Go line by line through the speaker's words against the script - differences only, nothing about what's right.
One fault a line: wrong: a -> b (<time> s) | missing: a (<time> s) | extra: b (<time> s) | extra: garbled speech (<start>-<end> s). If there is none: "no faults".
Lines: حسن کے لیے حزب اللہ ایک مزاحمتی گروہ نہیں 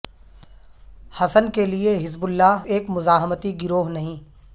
no faults